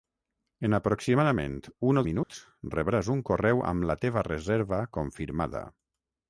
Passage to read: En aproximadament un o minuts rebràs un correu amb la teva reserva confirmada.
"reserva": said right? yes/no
yes